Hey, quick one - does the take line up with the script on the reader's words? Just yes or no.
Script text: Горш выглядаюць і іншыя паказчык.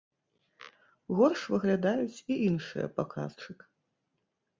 yes